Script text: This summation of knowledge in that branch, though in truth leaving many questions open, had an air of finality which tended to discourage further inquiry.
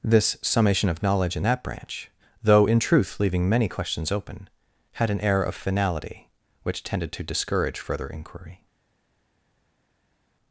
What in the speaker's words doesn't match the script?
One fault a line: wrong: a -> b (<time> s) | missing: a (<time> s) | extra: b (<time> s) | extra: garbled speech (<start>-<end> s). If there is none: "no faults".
no faults